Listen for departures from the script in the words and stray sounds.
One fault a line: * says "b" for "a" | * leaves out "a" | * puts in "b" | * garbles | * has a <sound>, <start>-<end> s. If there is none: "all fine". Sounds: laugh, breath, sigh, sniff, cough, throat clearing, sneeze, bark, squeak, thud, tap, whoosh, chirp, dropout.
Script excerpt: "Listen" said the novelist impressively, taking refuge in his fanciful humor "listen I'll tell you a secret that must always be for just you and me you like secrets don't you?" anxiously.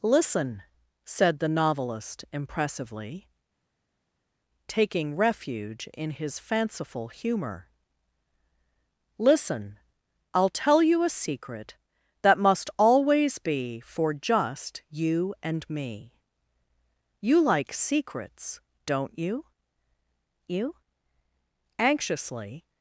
* puts in "you"